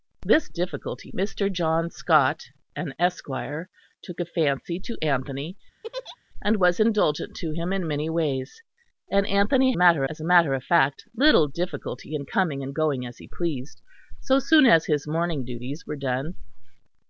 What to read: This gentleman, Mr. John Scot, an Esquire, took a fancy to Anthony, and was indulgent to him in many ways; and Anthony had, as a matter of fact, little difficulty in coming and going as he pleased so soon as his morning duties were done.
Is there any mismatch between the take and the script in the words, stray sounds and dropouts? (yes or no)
yes